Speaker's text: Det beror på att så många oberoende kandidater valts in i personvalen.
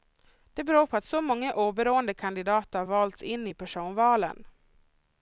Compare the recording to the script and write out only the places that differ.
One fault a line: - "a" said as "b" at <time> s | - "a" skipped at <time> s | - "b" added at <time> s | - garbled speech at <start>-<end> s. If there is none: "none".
none